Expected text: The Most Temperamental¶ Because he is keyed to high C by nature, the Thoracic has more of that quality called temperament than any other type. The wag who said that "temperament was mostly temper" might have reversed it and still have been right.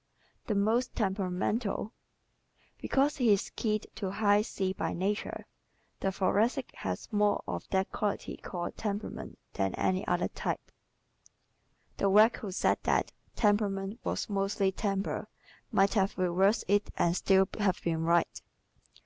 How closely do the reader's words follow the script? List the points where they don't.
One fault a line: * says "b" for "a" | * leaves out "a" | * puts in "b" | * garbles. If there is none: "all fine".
all fine